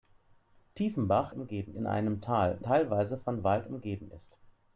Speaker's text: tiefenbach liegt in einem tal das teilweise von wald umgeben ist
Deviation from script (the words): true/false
true